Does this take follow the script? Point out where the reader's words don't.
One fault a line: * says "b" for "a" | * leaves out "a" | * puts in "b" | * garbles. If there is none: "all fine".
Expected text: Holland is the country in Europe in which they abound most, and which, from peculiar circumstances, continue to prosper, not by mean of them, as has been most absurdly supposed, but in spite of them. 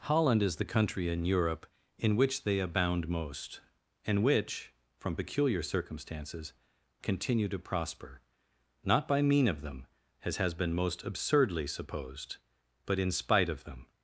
all fine